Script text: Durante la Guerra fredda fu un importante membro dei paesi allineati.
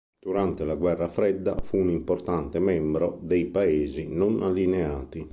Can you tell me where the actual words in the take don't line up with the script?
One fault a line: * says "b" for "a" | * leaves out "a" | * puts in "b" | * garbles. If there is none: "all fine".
* puts in "non"